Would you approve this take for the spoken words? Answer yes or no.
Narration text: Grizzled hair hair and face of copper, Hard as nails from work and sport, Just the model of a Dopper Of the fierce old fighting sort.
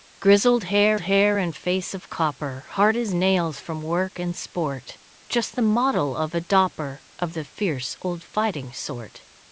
yes